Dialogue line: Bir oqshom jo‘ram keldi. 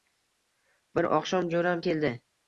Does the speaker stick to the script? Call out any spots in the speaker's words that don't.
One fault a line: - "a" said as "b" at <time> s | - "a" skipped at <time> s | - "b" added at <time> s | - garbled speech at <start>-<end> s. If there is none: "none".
none